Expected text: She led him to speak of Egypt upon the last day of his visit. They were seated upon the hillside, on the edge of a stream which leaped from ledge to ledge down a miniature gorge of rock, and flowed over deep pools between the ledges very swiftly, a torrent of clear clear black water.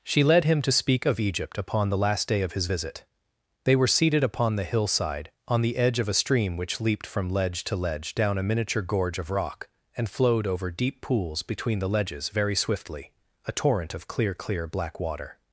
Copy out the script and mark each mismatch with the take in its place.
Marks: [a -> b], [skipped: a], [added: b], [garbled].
She led him to speak of Egypt upon the last day of his visit. They were seated upon the hillside, on the edge of a stream which leaped from ledge to ledge down a miniature gorge of rock, and flowed over deep pools between the ledges very swiftly, a torrent of clear clear black water.